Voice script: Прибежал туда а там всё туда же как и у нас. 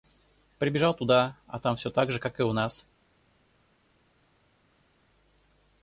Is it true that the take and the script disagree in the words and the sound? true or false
true